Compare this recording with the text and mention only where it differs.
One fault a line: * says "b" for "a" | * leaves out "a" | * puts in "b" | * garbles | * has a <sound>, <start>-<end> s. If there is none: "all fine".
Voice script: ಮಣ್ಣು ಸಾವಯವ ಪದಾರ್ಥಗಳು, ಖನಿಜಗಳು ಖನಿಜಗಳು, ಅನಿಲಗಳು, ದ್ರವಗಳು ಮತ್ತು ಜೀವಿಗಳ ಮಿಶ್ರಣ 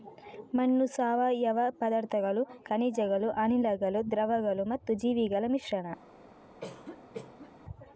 * leaves out "ಖನಿಜಗಳು"
* has a cough, 6.6-7.5 s